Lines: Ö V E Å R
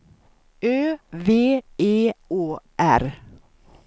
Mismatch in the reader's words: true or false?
false